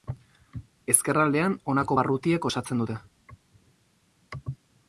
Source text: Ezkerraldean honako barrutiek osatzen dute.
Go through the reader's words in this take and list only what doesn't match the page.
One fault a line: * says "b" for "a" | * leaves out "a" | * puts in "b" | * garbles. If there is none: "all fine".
all fine